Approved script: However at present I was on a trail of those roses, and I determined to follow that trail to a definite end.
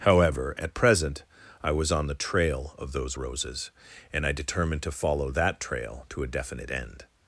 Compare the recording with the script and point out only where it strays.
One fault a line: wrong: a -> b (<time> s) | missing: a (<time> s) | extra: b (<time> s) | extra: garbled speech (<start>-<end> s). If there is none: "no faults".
wrong: a -> the (2.1 s)